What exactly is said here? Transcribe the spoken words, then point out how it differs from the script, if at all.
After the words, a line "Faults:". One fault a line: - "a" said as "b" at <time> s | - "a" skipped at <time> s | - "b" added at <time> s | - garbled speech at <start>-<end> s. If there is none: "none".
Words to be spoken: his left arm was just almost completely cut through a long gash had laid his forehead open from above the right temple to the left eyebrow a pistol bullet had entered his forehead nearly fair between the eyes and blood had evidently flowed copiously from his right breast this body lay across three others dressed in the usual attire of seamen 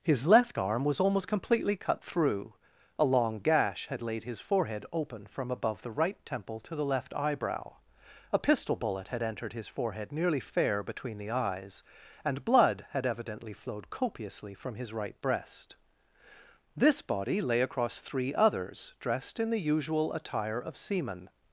his left arm was almost completely cut through a long gash had laid his forehead open from above the right temple to the left eyebrow a pistol bullet had entered his forehead nearly fair between the eyes and blood had evidently flowed copiously from his right breast this body lay across three others dressed in the usual attire of seamen
Faults:
- "just" skipped at 1.0 s